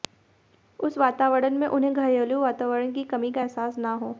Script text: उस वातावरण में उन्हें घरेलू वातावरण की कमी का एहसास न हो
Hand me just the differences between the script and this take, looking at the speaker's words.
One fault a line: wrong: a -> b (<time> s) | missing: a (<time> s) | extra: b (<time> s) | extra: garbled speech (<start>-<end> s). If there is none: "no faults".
no faults